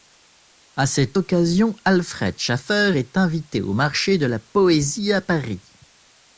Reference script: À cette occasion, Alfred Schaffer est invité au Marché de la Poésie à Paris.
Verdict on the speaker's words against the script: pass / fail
pass